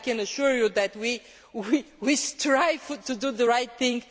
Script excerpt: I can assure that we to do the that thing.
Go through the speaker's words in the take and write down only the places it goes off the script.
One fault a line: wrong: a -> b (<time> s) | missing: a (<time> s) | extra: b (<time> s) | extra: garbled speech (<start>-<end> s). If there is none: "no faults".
extra: you (0.6 s)
extra: strive (2.1 s)
wrong: that -> right (3.5 s)